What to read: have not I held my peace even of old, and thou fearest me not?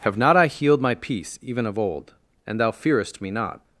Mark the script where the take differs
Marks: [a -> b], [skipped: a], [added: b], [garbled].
have not I [held -> healed] my peace even of old, and thou fearest me not?